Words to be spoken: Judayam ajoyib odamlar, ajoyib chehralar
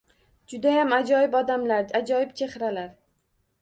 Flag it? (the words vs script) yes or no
no